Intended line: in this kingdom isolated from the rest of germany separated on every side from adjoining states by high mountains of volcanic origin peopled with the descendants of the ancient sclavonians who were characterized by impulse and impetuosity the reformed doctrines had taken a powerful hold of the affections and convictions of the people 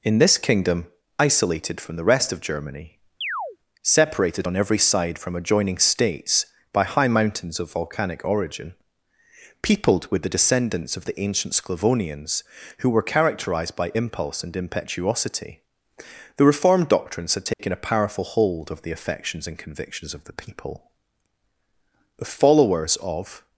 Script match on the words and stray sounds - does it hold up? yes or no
no